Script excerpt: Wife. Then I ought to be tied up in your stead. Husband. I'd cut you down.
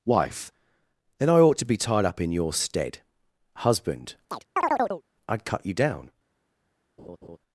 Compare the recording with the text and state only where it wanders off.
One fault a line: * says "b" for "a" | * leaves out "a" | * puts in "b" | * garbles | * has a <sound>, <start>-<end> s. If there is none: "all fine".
* has a chirp, 4.3-5.0 s
* has a laugh, 7.0-7.4 s